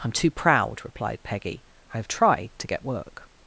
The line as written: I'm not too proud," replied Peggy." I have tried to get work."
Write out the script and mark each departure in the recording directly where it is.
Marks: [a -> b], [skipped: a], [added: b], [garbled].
I'm [skipped: not] too proud," replied Peggy." I have tried to get work."